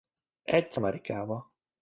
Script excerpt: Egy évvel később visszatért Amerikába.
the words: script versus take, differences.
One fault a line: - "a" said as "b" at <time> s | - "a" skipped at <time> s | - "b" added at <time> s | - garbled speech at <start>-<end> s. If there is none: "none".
- "évvel később visszatért" skipped at 0.8 s